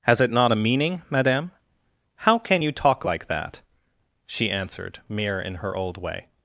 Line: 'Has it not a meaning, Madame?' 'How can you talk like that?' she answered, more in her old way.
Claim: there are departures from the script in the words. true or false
true